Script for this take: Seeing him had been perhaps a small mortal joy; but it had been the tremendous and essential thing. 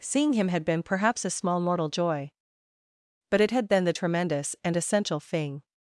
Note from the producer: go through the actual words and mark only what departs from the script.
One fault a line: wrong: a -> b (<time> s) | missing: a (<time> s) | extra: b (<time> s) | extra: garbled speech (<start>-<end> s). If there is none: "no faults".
no faults